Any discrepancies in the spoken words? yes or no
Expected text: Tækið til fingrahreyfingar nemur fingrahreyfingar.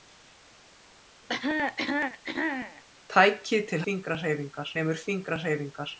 no